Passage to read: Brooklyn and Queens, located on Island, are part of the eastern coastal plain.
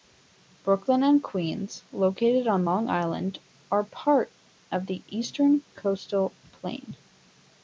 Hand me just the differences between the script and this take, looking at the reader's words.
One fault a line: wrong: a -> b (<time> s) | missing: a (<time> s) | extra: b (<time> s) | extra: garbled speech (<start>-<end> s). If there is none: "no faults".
extra: Long (2.6 s)